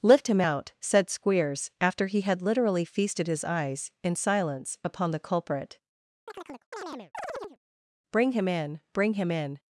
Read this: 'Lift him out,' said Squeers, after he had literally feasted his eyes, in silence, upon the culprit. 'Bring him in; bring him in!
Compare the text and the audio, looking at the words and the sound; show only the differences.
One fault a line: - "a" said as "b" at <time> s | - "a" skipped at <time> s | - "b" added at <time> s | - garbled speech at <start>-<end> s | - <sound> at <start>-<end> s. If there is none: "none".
- chirp at 6.3-7.6 s